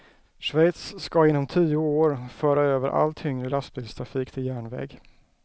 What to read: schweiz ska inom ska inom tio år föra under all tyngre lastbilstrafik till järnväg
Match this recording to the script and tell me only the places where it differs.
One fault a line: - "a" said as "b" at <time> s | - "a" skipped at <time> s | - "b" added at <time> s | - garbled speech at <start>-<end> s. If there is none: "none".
- "ska inom" skipped at 1.5 s
- "under" said as "över" at 2.6 s